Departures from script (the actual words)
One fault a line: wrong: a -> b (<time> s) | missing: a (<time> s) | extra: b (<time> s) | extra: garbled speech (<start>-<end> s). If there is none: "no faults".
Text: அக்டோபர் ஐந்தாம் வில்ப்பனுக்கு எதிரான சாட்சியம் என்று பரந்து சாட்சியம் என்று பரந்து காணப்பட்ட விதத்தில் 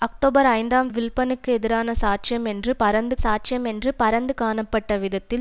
no faults